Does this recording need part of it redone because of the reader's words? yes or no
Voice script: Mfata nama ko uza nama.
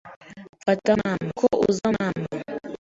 no